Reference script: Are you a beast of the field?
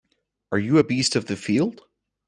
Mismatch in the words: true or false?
false